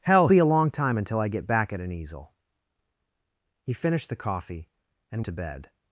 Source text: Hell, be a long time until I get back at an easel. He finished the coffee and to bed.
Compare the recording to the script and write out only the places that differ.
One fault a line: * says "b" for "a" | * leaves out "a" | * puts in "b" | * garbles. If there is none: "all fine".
all fine